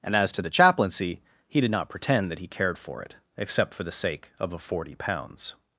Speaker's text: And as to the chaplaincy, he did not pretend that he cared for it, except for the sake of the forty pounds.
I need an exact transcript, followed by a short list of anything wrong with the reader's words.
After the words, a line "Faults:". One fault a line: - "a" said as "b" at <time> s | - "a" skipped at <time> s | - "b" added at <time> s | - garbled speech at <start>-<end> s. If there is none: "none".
And as to the chaplaincy, he did not pretend that he cared for it, except for the sake of a forty pounds.
Faults:
- "the" said as "a" at 4.5 s